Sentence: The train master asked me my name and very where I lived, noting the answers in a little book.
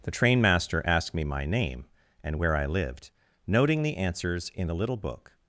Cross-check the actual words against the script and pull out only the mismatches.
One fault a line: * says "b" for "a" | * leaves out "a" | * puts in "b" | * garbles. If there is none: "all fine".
* leaves out "very"